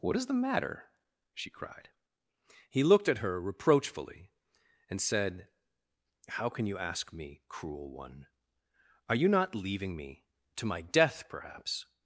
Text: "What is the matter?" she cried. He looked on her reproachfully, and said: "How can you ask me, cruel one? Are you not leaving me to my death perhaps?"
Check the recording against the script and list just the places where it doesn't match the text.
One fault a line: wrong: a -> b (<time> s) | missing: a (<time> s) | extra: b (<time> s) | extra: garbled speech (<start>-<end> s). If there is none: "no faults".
wrong: on -> at (3.1 s)